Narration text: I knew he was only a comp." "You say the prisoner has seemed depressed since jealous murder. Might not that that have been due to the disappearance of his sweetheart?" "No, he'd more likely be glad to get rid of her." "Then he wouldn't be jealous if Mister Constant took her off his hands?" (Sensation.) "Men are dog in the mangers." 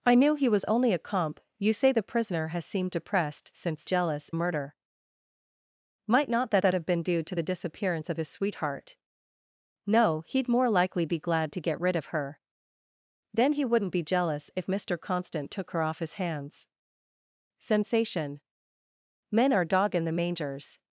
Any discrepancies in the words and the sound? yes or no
no